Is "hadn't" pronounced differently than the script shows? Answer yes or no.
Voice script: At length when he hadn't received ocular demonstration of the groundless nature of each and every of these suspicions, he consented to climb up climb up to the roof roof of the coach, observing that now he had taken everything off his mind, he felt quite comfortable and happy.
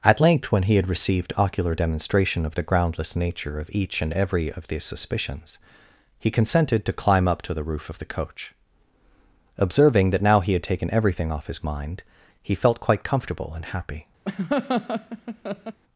yes